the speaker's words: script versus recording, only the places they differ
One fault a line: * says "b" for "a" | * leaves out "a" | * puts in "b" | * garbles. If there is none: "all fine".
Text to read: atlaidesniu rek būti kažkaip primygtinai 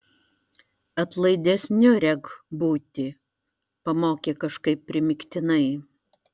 * puts in "pamokė"